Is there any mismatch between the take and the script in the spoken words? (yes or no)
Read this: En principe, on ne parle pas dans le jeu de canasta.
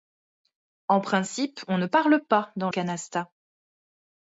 yes